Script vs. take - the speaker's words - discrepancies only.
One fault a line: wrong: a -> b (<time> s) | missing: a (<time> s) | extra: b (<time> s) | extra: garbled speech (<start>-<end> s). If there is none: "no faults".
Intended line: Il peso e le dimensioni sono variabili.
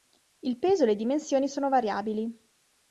no faults